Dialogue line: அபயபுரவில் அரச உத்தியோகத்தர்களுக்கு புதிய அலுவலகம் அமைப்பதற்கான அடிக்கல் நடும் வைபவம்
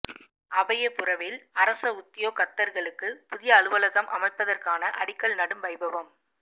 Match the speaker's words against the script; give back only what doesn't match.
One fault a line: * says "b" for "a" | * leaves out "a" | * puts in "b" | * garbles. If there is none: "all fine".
all fine